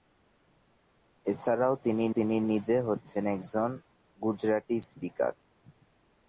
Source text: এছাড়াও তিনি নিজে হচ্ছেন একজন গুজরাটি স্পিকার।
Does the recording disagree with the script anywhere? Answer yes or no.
yes